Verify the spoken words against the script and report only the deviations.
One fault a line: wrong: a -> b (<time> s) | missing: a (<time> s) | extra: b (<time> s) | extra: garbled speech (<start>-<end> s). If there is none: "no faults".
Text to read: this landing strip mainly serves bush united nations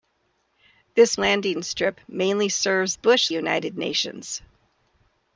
no faults